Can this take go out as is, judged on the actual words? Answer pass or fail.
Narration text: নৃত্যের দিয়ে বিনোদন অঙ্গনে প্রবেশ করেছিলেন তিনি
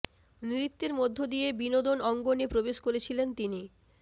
fail